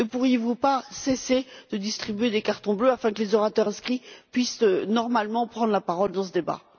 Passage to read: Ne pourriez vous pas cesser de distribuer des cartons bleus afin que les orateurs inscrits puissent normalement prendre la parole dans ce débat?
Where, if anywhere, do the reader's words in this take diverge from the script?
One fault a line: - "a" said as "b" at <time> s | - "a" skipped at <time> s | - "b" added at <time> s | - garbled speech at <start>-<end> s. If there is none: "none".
none